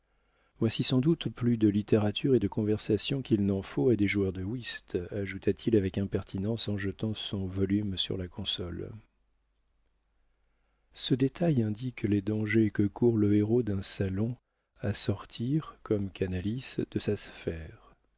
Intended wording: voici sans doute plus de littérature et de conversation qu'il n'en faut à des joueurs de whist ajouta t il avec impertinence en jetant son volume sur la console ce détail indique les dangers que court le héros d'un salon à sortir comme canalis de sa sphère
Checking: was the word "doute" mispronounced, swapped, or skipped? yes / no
no